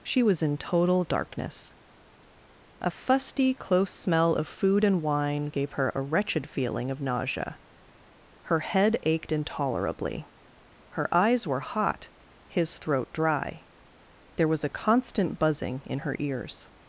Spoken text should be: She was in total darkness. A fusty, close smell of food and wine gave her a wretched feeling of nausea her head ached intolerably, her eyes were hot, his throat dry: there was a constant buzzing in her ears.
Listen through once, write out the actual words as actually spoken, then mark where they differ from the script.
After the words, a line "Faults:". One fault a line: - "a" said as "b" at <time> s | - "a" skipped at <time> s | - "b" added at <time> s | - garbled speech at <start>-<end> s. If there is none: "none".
She was in total darkness. A fusty, close smell of food and wine gave her a wretched feeling of nausea her head ached intolerably, her eyes were hot, his throat dry: there was a constant buzzing in her ears.
Faults:
none